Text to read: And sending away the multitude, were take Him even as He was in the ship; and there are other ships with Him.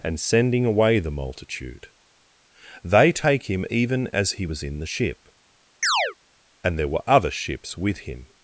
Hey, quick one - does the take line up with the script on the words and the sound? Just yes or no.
no